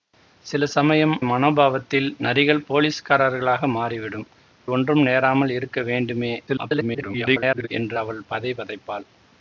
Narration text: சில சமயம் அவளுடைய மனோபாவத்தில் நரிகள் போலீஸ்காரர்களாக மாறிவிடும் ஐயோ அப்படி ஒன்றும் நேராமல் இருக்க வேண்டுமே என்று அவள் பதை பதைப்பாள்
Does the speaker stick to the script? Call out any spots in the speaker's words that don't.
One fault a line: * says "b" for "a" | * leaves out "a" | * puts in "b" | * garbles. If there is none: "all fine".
* leaves out "அவளுடைய"
* leaves out "ஐயோ அப்படி"
* garbles